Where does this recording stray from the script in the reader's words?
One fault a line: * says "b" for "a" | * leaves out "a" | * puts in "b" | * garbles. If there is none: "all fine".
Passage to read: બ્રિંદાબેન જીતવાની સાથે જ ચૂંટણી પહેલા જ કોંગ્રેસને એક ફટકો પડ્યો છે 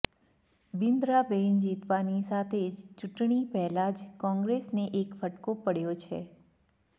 all fine